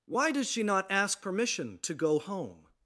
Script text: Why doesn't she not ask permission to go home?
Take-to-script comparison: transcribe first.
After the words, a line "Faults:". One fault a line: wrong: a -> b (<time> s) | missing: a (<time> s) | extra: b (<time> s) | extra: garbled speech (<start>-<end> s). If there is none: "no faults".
Why does she not ask permission to go home?
Faults:
wrong: doesn't -> does (0.3 s)